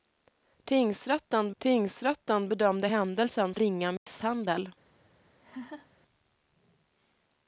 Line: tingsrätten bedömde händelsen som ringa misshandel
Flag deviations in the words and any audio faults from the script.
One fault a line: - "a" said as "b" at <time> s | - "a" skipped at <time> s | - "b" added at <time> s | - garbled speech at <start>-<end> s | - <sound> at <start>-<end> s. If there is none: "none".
- "tingsrätten" added at 1.6 s
- "som" skipped at 3.5 s
- dropout at 4.0-4.1 s
- laugh at 5.4-5.9 s